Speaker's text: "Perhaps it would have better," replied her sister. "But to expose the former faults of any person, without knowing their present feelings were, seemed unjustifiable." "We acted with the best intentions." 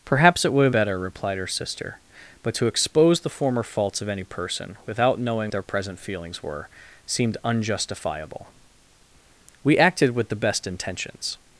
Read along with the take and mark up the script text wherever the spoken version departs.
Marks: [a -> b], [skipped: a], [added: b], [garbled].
"Perhaps it would have better," replied her sister. "But to expose the former faults of any person, without knowing their present feelings were, seemed unjustifiable." "We acted with the best intentions."